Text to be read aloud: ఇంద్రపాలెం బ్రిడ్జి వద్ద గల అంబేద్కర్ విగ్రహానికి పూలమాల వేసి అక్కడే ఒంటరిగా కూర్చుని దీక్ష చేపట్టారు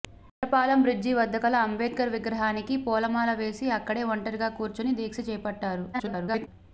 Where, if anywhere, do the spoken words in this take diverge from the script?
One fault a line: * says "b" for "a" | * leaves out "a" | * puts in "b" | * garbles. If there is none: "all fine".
* garbles